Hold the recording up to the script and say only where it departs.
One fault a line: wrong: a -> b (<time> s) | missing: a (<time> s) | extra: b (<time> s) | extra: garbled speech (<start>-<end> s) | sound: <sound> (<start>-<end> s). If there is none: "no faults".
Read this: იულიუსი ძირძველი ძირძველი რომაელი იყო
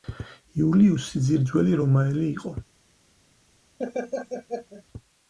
missing: ძირძველი (1.8 s)
sound: laugh (3.8-4.8 s)